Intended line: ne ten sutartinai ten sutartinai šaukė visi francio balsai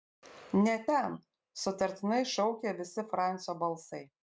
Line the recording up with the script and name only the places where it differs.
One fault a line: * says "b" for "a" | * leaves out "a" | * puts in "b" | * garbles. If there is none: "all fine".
* leaves out "ten sutartinai"